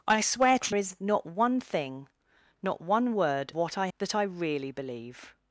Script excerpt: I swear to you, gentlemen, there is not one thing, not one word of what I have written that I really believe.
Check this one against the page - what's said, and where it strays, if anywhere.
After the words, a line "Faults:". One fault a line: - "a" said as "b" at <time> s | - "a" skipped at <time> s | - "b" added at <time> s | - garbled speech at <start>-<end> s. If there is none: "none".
I swear to is not one thing, not one word what I that I really believe.
Faults:
- "you gentlemen there" skipped at 0.8 s
- "of" skipped at 3.5 s
- "have written" skipped at 3.9 s